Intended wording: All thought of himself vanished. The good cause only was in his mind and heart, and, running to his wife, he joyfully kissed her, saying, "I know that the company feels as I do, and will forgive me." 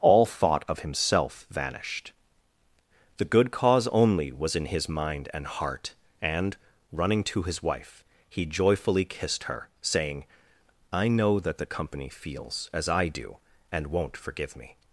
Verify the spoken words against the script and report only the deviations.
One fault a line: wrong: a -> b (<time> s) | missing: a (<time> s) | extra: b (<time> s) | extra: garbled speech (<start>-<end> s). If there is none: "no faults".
wrong: will -> won't (13.9 s)